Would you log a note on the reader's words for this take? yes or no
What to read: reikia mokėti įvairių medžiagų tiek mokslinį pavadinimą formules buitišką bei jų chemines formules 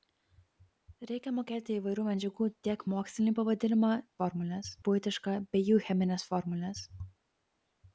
no